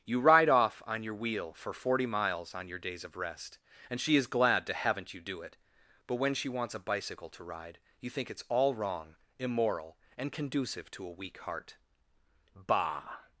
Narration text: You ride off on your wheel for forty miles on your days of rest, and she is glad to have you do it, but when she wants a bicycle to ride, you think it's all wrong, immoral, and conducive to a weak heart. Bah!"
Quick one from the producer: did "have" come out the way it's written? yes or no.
no